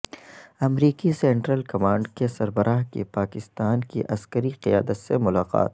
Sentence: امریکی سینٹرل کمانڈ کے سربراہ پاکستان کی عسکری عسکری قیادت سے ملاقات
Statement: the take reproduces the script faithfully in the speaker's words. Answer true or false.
false